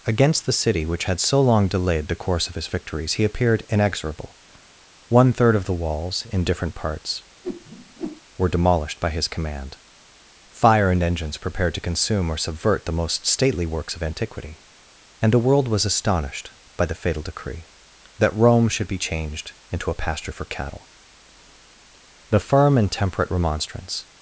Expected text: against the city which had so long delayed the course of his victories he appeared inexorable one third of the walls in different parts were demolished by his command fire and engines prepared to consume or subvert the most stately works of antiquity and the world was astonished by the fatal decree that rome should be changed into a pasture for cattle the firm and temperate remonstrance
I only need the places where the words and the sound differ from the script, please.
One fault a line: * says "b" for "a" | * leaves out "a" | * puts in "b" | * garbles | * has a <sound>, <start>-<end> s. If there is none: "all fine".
* has a whoosh, 7.4-8.2 s